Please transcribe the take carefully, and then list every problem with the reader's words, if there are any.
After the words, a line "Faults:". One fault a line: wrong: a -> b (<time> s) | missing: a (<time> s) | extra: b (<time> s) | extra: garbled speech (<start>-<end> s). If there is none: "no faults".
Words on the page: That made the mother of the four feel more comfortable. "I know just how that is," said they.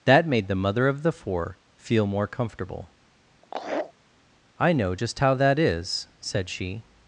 That made the mother of the four feel more comfortable. "I know just how that is," said she.
Faults:
wrong: they -> she (6.5 s)